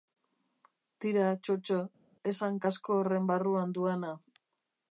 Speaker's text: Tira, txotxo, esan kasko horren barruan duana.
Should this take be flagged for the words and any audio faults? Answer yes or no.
no